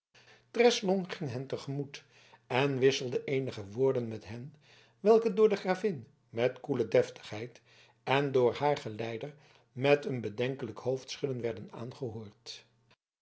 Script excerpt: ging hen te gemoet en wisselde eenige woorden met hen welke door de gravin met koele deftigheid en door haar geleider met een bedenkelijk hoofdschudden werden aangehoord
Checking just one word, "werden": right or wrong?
right